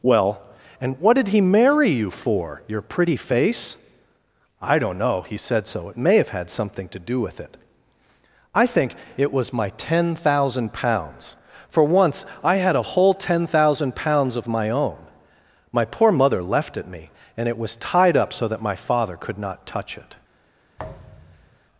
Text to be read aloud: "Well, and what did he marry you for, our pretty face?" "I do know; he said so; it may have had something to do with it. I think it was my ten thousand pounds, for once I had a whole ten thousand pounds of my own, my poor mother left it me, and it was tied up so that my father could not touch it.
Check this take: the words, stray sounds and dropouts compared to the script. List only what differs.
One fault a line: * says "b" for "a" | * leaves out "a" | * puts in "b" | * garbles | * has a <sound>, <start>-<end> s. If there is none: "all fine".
* says "your" for "our"
* says "don't" for "do"
* has a thud, 20.8-21.6 s